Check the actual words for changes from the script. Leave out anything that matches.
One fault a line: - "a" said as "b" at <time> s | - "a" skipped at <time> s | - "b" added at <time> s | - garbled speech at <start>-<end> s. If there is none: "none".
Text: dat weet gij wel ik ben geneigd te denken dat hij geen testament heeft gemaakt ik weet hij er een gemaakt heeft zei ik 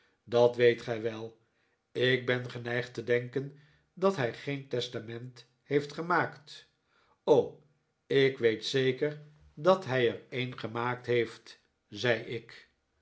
- "zeker dat" added at 8.7 s